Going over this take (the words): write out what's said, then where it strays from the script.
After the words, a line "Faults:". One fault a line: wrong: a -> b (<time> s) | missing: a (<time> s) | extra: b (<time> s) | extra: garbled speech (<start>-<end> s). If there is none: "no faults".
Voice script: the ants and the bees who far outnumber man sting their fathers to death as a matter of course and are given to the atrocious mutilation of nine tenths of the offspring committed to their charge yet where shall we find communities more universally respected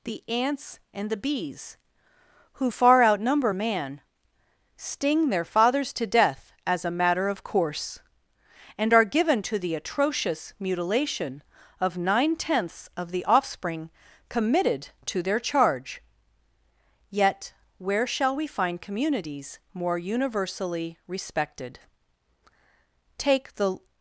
the ants and the bees who far outnumber man sting their fathers to death as a matter of course and are given to the atrocious mutilation of nine tenths of the offspring committed to their charge yet where shall we find communities more universally respected take the
Faults:
extra: take the (23.2 s)